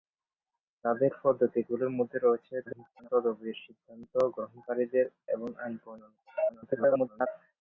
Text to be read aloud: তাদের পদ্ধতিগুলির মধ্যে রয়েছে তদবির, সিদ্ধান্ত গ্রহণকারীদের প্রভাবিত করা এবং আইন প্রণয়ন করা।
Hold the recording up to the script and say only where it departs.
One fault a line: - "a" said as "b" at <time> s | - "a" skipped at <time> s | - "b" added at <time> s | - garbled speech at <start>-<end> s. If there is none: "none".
- garbled speech at 2.7-3.1 s
- "প্রভাবিত করা" skipped at 5.1 s
- garbled speech at 6.5-7.3 s